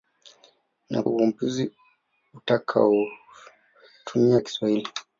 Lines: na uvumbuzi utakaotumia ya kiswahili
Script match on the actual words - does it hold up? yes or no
yes